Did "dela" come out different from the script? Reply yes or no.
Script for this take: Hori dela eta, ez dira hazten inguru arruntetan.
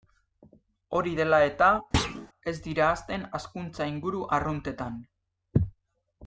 no